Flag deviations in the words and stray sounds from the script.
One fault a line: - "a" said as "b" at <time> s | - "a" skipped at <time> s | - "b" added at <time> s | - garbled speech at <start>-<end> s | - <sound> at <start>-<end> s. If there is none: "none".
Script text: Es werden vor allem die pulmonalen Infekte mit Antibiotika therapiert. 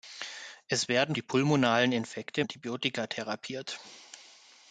- "vor allem" skipped at 1.1 s
- "mit" skipped at 2.4 s